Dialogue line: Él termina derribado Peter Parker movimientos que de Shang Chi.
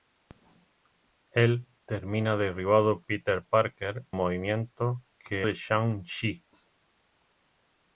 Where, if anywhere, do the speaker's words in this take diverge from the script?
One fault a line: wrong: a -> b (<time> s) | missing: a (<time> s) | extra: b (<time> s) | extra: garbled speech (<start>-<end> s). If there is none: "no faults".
no faults